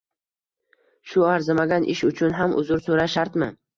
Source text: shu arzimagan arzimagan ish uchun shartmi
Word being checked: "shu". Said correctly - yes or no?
yes